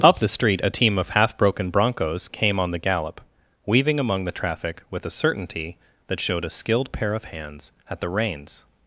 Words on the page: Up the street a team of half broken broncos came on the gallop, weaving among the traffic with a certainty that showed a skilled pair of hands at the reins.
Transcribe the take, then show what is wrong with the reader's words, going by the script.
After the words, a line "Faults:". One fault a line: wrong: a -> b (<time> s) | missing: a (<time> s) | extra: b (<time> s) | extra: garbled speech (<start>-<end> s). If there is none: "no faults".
Up the street a team of half broken broncos came on the gallop, weaving among the traffic with a certainty that showed a skilled pair of hands at the reins.
Faults:
no faults